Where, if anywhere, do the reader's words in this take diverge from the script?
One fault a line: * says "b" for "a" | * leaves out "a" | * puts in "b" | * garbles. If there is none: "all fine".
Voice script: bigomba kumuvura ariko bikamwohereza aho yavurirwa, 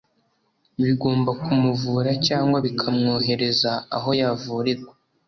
* says "cyangwa" for "ariko"